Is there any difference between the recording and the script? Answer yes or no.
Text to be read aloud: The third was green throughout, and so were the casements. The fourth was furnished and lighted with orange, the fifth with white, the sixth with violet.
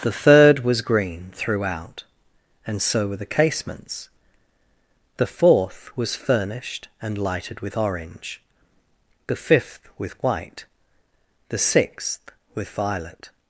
no